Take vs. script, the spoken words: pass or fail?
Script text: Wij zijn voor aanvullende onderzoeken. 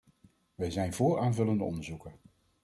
pass